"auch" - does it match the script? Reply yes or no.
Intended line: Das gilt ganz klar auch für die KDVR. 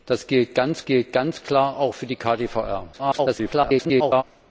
yes